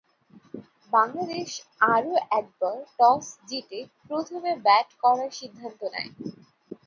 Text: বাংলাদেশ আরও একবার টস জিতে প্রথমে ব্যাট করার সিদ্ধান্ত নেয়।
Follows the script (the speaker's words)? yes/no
yes